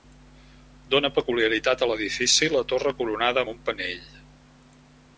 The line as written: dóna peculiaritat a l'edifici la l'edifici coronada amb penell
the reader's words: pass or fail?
fail